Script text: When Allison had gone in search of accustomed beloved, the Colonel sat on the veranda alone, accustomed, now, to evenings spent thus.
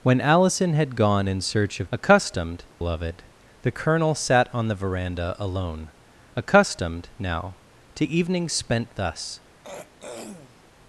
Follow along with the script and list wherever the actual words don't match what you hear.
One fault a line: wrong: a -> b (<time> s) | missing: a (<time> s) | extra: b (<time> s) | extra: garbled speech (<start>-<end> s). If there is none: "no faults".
no faults